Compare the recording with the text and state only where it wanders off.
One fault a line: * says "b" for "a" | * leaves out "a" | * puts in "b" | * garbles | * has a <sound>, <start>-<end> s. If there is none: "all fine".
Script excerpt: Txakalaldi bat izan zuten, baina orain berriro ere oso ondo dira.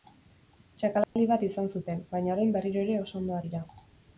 * has a dropout, 1.0-1.2 s